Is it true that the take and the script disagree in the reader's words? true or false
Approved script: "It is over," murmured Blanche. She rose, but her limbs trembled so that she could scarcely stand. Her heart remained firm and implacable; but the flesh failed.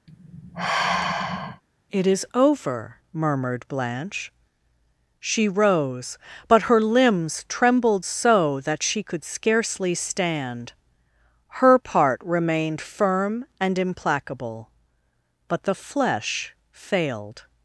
true